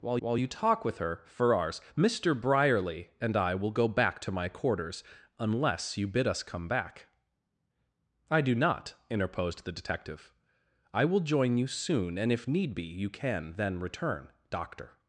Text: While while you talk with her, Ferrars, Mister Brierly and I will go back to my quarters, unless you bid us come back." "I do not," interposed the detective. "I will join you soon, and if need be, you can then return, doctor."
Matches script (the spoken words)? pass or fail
pass